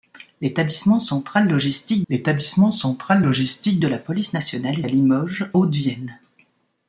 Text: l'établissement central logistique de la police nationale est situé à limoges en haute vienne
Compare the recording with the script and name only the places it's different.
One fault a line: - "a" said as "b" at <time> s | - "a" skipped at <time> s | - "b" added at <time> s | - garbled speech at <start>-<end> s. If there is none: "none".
- "l'établissement central logistique" added at 2.1 s
- "situé" skipped at 4.8 s
- "en" skipped at 5.5 s